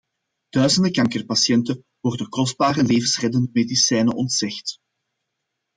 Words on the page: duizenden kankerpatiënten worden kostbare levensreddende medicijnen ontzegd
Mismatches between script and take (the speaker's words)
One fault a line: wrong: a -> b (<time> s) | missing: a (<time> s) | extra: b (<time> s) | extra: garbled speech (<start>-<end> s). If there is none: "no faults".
no faults